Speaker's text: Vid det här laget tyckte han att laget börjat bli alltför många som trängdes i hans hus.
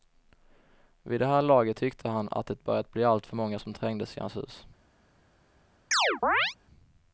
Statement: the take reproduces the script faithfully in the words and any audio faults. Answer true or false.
false